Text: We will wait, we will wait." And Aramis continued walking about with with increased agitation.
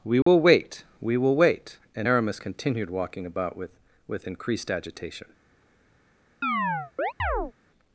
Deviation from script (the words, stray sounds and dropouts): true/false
true